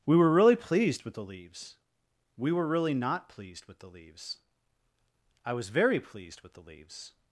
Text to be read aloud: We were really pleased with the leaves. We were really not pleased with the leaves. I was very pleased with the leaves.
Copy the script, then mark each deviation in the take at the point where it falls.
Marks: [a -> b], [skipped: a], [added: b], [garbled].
We were really pleased with the leaves. We were really not pleased with the leaves. I was very pleased with the leaves.